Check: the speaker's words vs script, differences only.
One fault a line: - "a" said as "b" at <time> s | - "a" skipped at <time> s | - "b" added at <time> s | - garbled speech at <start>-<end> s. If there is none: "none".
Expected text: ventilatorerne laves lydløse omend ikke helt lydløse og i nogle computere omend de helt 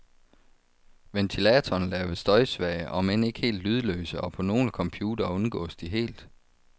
- "lydløse" said as "støjsvage" at 2.2 s
- "i" said as "på" at 4.3 s
- "omend" said as "undgås" at 5.3 s